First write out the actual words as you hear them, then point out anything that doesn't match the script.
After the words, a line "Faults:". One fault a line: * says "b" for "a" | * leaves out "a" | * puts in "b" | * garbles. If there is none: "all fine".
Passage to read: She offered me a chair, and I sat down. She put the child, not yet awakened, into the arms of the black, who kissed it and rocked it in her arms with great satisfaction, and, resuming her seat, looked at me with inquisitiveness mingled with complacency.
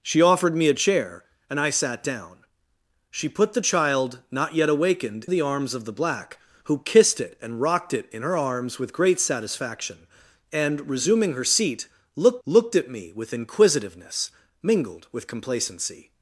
She offered me a chair, and I sat down. She put the child, not yet awakened, the arms of the black, who kissed it and rocked it in her arms with great satisfaction, and, resuming her seat, looked looked at me with inquisitiveness mingled with complacency.
Faults:
* leaves out "into"
* puts in "looked"